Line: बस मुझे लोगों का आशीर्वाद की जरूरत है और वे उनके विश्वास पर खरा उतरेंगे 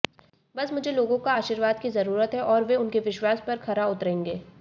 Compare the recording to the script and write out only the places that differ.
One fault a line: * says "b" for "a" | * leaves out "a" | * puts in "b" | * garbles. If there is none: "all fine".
all fine